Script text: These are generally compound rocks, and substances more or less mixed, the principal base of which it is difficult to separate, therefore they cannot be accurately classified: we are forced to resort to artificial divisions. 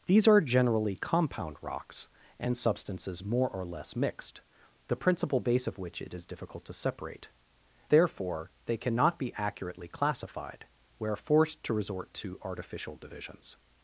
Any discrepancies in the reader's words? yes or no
no